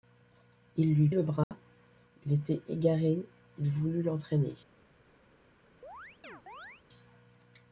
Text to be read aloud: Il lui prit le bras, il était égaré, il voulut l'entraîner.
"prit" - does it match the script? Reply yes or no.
no